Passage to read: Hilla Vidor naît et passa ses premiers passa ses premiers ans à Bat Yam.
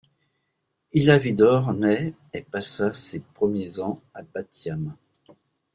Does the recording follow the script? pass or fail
fail